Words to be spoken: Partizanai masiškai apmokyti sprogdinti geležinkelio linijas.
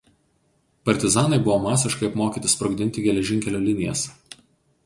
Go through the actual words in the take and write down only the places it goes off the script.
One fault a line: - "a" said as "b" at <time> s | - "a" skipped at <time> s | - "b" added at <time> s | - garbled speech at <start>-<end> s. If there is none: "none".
- "buvo" added at 1.5 s